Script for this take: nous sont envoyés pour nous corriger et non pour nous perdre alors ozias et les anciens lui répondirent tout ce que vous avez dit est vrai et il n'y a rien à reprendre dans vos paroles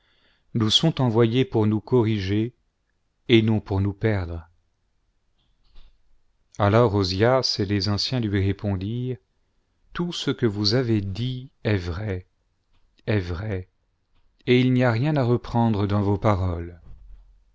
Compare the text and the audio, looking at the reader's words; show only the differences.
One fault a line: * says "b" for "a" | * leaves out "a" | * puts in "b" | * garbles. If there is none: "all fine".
* puts in "est vrai"